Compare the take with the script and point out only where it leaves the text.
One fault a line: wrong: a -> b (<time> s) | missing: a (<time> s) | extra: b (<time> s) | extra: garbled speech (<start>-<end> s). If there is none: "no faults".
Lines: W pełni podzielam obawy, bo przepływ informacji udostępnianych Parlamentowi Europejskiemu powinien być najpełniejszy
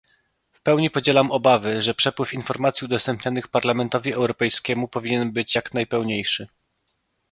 wrong: bo -> że (1.8 s)
extra: jak (5.5 s)